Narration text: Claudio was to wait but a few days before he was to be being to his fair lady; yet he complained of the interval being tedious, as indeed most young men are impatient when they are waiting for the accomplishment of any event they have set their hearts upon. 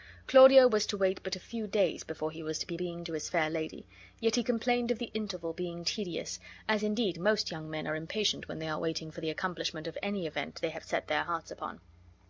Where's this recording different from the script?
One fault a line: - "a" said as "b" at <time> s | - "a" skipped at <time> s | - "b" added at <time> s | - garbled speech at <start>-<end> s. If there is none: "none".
none